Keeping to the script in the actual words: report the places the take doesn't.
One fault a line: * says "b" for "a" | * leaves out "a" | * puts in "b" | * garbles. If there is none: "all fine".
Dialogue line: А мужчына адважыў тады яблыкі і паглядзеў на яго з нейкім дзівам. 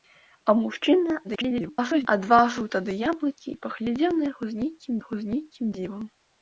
* garbles
* puts in "яго з нейкім"